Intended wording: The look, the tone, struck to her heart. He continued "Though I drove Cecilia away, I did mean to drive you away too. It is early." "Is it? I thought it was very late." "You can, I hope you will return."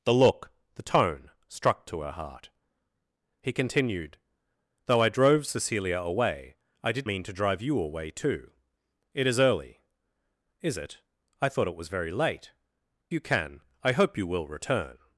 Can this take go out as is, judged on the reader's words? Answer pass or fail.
pass